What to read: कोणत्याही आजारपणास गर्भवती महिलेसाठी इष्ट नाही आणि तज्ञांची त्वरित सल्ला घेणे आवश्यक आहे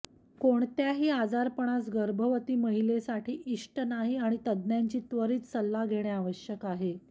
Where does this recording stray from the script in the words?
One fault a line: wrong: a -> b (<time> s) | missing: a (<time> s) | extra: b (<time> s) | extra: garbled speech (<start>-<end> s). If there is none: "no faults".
no faults